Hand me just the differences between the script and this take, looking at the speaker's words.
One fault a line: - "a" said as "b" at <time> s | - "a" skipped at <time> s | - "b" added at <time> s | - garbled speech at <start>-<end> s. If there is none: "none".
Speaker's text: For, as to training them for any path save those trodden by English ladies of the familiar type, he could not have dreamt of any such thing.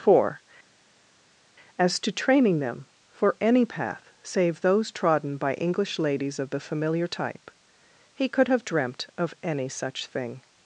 - "not" skipped at 8.5 s